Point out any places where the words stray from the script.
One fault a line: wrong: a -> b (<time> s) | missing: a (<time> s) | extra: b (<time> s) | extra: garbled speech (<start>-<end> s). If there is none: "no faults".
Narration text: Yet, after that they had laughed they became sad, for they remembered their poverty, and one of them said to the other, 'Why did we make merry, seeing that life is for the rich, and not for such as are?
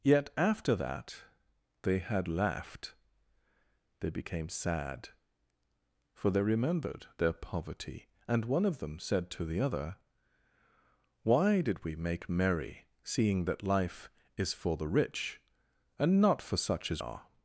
no faults